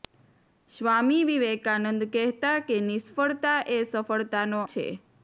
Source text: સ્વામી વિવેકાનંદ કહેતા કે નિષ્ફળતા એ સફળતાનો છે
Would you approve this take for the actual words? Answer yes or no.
yes